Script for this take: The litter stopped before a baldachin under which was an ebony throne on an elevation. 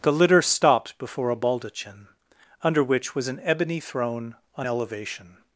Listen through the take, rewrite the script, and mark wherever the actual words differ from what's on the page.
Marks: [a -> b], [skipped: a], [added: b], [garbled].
The litter stopped before a baldachin under which was an ebony throne on [skipped: an] elevation.